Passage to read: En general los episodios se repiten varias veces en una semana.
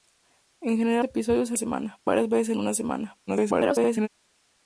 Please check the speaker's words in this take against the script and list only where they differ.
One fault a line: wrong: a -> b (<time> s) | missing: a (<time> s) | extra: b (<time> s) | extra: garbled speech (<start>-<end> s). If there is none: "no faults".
missing: los (1.1 s)
wrong: repiten -> semana (1.6 s)
extra: garbled speech (3.3-4.1 s)